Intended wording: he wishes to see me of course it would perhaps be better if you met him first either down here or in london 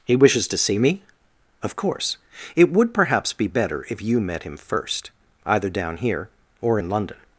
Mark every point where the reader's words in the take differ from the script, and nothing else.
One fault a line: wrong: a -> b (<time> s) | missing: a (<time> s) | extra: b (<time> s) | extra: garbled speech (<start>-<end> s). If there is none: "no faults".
no faults